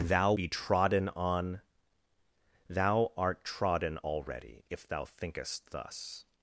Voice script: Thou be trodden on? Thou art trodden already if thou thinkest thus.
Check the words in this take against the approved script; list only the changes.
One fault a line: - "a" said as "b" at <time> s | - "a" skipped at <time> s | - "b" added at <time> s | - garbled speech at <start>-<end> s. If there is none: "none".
none